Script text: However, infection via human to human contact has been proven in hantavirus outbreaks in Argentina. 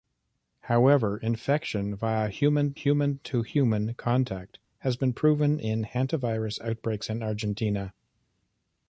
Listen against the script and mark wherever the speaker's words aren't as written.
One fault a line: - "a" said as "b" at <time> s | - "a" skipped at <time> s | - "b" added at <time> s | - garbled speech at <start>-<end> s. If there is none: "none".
- "human" added at 2.7 s